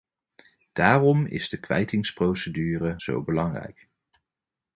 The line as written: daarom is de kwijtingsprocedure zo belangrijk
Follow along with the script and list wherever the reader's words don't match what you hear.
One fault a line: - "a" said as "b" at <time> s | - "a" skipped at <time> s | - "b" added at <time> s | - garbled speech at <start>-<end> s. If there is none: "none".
none